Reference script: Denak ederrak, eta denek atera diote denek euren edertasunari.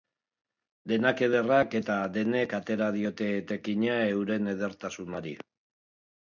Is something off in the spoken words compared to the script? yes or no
yes